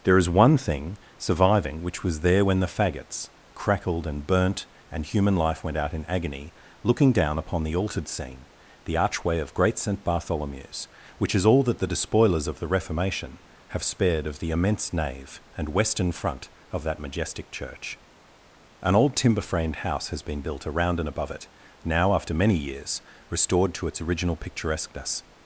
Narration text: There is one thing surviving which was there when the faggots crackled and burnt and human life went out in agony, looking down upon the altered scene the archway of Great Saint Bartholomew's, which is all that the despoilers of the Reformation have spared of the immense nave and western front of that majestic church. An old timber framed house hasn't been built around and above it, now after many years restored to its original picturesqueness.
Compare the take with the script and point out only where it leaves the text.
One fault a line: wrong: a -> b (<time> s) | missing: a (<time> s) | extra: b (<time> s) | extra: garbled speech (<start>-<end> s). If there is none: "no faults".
wrong: hasn't -> has (20.1 s)